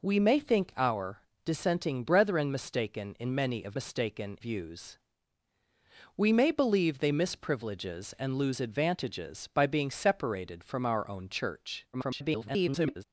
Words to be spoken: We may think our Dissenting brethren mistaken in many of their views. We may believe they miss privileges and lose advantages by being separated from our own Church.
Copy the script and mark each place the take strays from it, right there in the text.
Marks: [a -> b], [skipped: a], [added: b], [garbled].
We may think our Dissenting brethren mistaken in many of [their -> mistaken] views. We may believe they miss privileges and lose advantages by being separated from our own Church. [garbled]